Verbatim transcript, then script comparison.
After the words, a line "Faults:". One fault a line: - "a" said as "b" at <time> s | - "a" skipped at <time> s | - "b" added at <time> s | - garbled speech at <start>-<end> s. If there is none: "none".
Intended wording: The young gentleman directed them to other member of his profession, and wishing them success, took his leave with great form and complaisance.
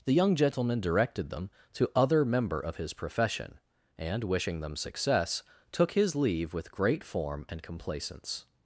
The young gentleman directed them to other member of his profession, and wishing them success, took his leave with great form and complaisance.
Faults:
none